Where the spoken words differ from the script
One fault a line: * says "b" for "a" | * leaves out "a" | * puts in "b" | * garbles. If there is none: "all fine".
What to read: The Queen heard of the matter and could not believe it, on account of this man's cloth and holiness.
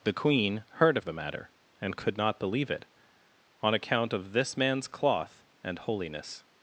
all fine